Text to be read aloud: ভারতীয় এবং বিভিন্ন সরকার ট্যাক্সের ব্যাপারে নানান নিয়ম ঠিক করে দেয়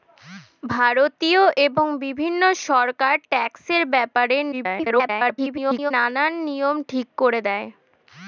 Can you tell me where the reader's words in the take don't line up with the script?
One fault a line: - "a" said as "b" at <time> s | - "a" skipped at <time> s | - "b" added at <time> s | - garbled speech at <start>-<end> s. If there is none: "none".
- garbled speech at 4.5-5.9 s